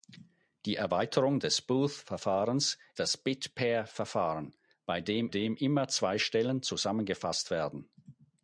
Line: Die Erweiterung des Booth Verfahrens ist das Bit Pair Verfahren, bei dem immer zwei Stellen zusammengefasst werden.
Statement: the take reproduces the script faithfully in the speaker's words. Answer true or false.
false